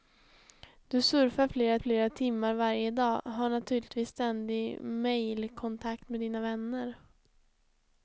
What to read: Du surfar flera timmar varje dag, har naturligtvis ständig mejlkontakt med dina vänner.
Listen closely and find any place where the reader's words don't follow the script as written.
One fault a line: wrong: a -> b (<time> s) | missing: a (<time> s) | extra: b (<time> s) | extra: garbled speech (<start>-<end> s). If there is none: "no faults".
extra: flera (1.8 s)